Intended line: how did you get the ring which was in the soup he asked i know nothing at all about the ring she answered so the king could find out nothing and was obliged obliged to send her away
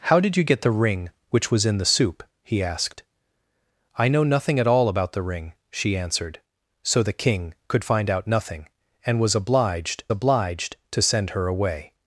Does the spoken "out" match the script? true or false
true